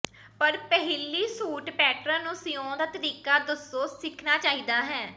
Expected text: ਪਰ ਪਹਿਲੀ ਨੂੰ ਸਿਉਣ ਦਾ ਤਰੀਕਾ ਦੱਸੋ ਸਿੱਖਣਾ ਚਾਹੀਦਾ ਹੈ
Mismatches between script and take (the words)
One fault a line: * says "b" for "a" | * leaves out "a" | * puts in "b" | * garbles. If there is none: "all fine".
* puts in "ਸੂਟ ਪੈਟਰਨ"